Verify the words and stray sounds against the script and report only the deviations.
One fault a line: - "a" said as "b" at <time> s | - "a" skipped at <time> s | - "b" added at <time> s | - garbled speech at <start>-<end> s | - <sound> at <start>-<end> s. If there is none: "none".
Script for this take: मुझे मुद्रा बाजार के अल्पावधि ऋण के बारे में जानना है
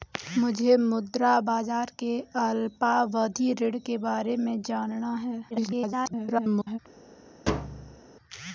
- garbled speech at 5.5-6.8 s
- thud at 7.5-8.0 s